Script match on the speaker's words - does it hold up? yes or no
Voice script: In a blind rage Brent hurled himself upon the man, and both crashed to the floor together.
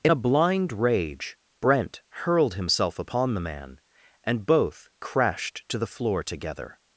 yes